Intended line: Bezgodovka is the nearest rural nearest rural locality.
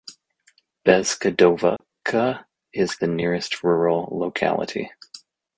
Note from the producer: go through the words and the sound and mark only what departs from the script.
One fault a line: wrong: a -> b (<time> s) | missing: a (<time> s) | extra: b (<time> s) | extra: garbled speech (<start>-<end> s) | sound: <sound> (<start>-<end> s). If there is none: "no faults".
sound: dropout (1.8-1.8 s)
missing: nearest rural (4.1 s)